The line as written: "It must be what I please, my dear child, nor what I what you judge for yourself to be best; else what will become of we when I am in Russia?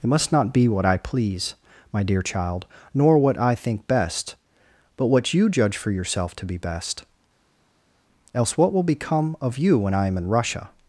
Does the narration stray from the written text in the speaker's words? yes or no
yes